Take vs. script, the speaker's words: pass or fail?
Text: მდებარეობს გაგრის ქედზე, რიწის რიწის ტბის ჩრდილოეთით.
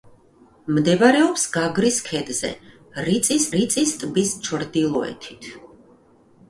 pass